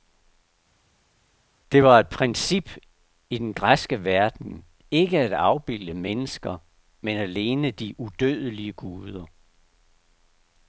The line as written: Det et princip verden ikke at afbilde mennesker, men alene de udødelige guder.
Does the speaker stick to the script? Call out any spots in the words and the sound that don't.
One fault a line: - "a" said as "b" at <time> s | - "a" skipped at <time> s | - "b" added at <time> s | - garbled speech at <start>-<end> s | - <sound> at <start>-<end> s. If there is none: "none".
- "var" added at 1.8 s
- "i den græske" added at 3.3 s